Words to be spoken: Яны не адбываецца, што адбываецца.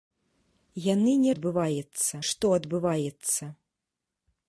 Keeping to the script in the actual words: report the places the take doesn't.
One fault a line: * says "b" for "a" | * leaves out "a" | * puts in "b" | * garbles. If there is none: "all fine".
all fine